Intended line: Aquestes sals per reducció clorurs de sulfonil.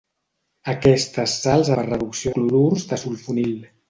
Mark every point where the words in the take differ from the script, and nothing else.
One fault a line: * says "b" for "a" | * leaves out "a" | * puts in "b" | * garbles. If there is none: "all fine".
all fine